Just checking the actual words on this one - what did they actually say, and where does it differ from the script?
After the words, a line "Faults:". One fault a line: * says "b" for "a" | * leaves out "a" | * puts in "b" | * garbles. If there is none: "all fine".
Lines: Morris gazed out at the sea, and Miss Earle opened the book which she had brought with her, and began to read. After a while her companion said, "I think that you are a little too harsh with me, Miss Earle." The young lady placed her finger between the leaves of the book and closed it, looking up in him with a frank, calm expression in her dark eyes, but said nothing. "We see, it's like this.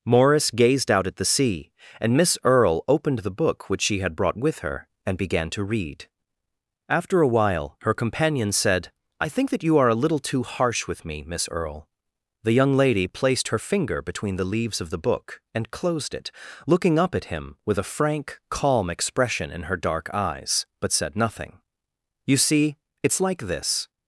Morris gazed out at the sea, and Miss Earle opened the book which she had brought with her, and began to read. After a while her companion said, "I think that you are a little too harsh with me, Miss Earle." The young lady placed her finger between the leaves of the book and closed it, looking up at him with a frank, calm expression in her dark eyes, but said nothing. "You see, it's like this.
Faults:
* says "at" for "in"
* says "You" for "We"